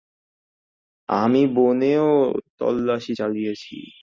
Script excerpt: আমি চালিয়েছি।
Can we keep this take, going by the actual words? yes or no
no